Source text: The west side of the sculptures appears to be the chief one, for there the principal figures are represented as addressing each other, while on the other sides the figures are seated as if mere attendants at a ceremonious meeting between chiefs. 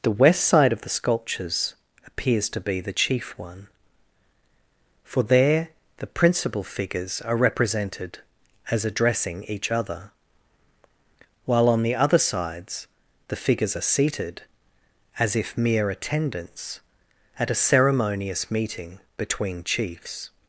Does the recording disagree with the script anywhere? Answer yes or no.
no